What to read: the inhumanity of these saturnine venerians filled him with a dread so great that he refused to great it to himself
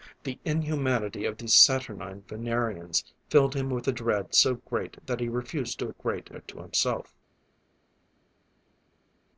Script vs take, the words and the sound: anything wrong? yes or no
no